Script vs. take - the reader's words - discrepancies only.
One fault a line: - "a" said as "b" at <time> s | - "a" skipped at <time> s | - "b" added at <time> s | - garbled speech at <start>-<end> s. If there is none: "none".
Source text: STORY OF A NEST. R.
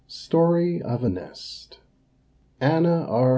- "ANNA" added at 2.6 s